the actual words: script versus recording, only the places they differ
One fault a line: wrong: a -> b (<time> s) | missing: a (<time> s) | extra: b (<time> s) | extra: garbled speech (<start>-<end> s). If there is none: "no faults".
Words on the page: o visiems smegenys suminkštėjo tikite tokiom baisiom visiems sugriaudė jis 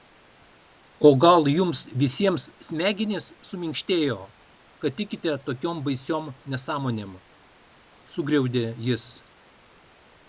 extra: gal jums (1.2 s)
extra: kad (4.8 s)
wrong: visiems -> nesąmonėm (6.5 s)